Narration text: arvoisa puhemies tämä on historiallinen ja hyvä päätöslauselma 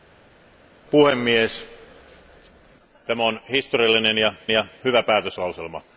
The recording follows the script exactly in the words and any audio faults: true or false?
false